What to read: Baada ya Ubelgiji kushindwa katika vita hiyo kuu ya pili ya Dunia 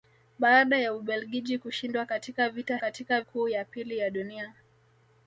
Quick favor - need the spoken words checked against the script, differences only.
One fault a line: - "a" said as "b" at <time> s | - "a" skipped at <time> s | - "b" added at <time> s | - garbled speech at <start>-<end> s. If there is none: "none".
- "hiyo" said as "katika" at 2.8 s